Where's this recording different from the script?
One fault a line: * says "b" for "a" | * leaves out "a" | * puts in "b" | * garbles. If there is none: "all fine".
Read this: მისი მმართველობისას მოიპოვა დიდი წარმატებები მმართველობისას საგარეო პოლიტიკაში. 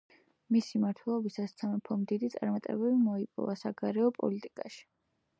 * says "სამეფომ" for "მოიპოვა"
* says "მოიპოვა" for "მმართველობისას"